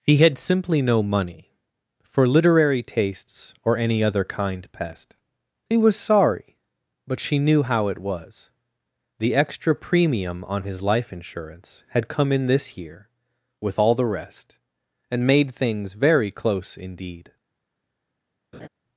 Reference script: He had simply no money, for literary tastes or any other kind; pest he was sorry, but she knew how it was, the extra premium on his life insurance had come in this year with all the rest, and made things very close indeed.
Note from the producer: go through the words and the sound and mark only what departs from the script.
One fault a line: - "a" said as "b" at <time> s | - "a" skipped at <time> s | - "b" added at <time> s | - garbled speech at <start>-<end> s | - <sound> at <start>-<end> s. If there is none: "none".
- laugh at 18.5-18.7 s